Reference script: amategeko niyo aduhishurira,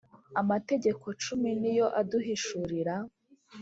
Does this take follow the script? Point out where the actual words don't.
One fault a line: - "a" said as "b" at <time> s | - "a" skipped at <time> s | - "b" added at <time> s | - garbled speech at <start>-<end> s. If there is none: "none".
- "cumi" added at 1.2 s